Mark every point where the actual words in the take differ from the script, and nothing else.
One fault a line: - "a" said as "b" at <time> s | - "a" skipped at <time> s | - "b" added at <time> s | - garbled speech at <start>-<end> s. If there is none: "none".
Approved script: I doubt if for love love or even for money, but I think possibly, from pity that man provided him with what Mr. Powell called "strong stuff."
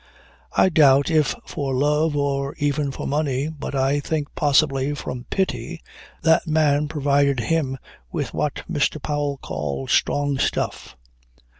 - "love" skipped at 2.1 s